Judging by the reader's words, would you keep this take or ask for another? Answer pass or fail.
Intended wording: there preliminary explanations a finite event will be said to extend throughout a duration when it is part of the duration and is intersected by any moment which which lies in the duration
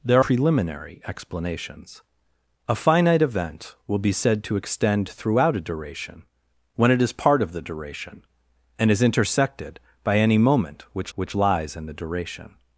pass